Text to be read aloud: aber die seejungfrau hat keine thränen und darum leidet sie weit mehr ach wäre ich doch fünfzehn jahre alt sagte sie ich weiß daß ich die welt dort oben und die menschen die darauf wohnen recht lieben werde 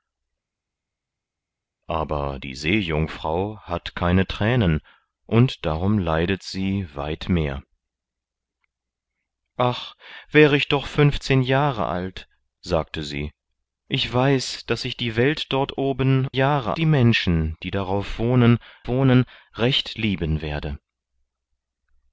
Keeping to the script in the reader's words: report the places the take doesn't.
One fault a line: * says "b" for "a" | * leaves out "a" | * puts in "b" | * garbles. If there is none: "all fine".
* says "jahre" for "und"
* puts in "wohnen"